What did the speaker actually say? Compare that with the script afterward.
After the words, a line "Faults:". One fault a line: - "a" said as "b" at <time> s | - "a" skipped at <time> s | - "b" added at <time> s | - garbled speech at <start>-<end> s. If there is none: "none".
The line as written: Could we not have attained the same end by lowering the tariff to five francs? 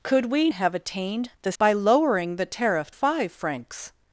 Could we have attained the by lowering the tariff five francs?
Faults:
- "not" skipped at 0.5 s
- "same end" skipped at 1.5 s
- "to" skipped at 2.9 s